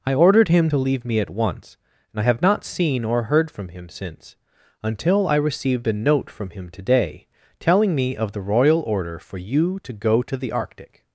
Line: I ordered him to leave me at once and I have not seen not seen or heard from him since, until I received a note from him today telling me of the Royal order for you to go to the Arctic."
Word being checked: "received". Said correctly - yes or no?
yes